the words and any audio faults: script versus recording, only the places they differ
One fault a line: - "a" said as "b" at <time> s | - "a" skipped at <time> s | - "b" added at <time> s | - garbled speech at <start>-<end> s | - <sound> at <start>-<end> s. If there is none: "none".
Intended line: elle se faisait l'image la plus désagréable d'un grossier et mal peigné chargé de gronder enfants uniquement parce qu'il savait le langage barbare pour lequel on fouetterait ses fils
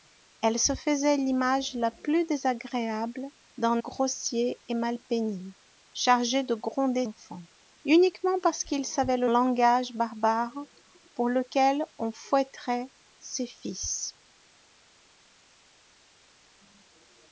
none